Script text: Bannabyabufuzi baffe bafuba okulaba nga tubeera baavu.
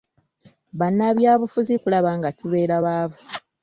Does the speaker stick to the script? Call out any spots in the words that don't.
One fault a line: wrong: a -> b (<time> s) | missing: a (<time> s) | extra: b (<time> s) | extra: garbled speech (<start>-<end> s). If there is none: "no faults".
missing: baffe bafuba (1.7 s)